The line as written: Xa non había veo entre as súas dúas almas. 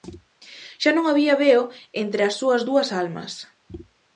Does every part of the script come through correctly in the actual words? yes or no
yes